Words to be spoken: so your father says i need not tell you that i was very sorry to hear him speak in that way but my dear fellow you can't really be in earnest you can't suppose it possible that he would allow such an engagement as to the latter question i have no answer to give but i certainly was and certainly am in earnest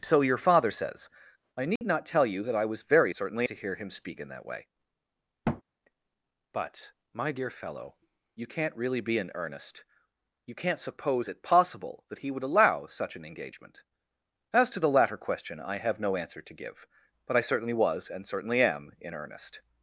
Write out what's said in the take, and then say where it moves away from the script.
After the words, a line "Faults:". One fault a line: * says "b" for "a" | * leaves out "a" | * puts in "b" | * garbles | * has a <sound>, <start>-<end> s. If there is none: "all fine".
so your father says i need not tell you that i was very certainly to hear him speak in that way but my dear fellow you can't really be in earnest you can't suppose it possible that he would allow such an engagement as to the latter question i have no answer to give but i certainly was and certainly am in earnest
Faults:
* has a dropout, 1.8-1.8 s
* says "certainly" for "sorry"
* has a thud, 5.4-5.6 s